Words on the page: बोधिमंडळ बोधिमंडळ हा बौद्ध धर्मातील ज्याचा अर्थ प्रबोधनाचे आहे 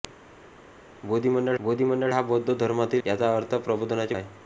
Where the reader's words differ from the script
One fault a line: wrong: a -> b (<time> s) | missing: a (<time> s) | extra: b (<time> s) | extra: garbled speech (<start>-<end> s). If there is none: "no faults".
no faults